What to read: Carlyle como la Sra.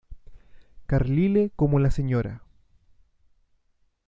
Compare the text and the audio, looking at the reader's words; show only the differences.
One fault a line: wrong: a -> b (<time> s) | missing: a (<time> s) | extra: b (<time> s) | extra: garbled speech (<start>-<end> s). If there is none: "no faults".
no faults